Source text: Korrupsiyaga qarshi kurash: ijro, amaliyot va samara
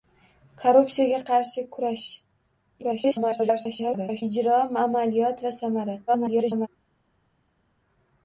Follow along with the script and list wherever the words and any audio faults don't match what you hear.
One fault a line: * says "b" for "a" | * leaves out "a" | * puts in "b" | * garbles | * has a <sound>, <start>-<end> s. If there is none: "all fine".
* garbles
* garbles